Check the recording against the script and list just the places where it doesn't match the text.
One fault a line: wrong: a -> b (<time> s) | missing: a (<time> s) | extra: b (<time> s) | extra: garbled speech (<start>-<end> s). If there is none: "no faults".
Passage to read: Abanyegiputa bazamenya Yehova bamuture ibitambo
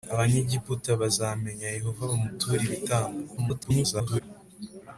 extra: garbled speech (3.4-4.2 s)